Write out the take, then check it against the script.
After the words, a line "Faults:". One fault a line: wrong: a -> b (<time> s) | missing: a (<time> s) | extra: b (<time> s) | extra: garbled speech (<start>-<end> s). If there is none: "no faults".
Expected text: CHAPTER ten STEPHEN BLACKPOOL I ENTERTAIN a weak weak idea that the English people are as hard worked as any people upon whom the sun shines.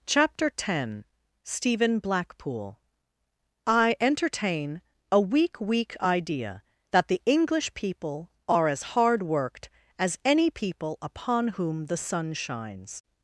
CHAPTER ten STEPHEN BLACKPOOL I ENTERTAIN a weak weak idea that the English people are as hard worked as any people upon whom the sun shines.
Faults:
no faults